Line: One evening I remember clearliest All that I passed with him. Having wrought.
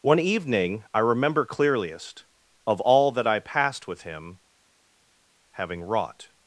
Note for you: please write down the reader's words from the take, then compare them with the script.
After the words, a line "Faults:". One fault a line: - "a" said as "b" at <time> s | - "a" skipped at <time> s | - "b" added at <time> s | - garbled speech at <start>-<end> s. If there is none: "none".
One evening I remember clearliest Of all that I passed with him. Having wrought.
Faults:
- "Of" added at 2.7 s